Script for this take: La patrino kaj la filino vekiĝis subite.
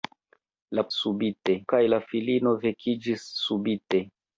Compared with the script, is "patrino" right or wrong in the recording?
wrong